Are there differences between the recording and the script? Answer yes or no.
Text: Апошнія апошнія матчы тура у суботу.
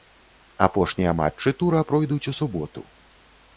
yes